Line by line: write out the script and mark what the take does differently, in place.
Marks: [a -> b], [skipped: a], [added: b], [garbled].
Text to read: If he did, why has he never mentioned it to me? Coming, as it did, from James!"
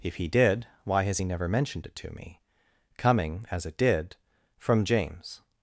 If he did, why has he never mentioned it to me? Coming, as it did, from James!"